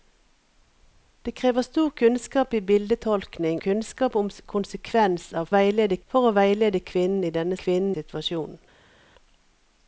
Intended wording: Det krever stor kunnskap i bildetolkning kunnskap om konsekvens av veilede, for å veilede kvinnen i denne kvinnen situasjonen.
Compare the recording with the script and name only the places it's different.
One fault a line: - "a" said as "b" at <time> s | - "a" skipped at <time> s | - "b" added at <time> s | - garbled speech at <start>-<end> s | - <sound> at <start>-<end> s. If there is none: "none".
none